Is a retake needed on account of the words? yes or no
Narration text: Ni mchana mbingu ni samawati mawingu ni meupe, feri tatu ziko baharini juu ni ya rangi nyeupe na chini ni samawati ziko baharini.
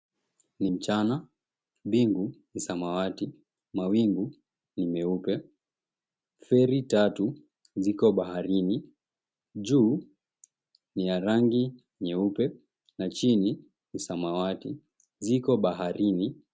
no